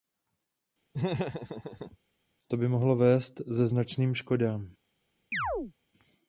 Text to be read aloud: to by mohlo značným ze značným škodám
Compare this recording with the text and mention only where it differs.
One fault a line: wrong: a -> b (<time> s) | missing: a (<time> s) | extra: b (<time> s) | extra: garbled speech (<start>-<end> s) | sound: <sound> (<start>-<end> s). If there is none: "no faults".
sound: laugh (0.9-2.0 s)
wrong: značným -> vést (3.0 s)
sound: chirp (5.3-5.7 s)